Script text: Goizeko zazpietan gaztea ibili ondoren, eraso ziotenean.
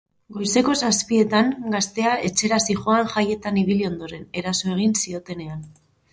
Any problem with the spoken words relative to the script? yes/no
yes